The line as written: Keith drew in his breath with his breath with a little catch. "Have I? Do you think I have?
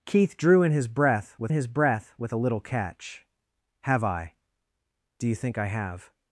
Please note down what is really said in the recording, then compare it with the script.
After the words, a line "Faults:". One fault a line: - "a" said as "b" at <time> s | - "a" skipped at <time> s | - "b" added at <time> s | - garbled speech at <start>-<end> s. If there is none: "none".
Keith drew in his breath with his breath with a little catch. "Have I? Do you think I have?
Faults:
none